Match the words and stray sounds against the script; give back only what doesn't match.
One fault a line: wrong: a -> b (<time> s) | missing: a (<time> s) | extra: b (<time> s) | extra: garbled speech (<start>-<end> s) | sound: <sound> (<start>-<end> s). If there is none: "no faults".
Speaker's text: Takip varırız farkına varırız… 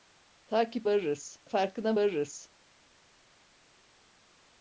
no faults